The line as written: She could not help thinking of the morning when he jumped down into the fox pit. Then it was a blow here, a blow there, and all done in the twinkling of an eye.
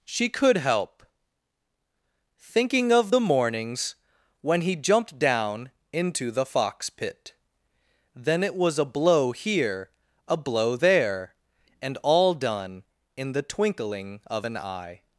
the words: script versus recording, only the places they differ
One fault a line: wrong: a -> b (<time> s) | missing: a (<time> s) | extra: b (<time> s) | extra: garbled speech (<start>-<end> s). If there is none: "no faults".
missing: not (0.6 s)
wrong: morning -> mornings (3.2 s)